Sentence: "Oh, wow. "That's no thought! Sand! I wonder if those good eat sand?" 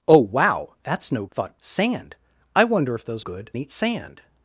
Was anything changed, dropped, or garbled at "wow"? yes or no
no